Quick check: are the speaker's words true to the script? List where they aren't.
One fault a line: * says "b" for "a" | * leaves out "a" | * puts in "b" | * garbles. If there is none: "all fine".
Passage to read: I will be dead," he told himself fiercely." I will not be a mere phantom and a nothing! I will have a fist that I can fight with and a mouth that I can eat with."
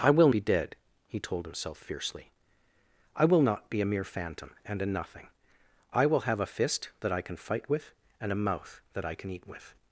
all fine